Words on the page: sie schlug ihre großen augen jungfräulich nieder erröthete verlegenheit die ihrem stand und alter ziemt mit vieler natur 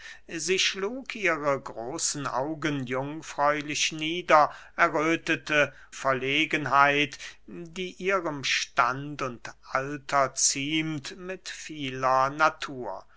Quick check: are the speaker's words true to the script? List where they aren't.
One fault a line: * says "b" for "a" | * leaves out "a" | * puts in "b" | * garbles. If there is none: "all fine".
all fine